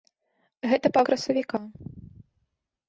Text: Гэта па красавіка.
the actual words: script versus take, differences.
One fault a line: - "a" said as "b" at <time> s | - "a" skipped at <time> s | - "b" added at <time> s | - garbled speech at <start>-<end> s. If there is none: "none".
none